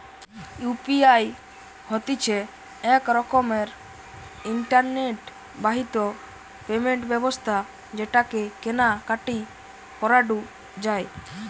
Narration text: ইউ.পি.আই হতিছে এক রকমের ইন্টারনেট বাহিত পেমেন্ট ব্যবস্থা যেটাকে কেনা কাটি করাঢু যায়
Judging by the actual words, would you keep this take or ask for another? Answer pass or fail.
pass